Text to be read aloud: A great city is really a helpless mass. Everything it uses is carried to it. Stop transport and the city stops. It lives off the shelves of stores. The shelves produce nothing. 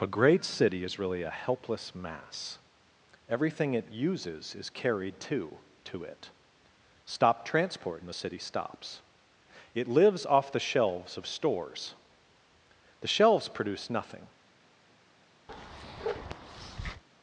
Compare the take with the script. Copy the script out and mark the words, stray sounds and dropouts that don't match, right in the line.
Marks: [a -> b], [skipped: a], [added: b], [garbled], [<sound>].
A great city is really a helpless mass. Everything it uses is carried to [added: to] it. Stop transport and the city stops. It lives off the shelves of stores. The shelves produce nothing. [bark]